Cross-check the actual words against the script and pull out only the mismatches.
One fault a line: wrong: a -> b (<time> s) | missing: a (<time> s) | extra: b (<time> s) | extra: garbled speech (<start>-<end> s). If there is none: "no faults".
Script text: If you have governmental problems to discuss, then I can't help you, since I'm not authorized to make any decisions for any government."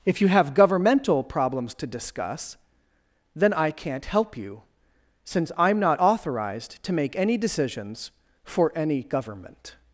no faults